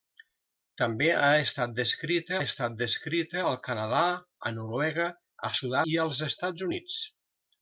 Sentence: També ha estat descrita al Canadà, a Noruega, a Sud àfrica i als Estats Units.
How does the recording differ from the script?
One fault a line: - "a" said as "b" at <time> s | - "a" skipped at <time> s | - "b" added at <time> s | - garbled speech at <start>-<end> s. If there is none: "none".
- "estat descrita" added at 2.4 s
- "àfrica" skipped at 5.8 s